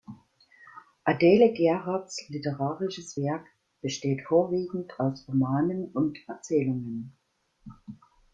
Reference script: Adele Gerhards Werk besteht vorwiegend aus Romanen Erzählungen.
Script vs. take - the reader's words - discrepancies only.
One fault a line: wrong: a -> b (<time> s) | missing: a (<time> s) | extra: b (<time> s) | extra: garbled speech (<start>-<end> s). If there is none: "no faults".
extra: literarisches (2.3 s)
extra: und (5.9 s)